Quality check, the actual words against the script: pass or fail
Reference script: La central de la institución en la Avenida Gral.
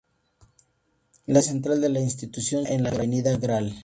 pass